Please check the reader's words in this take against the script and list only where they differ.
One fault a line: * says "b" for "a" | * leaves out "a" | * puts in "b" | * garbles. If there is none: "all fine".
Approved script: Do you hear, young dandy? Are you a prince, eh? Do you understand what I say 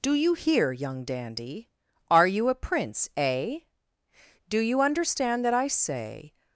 * says "that" for "what"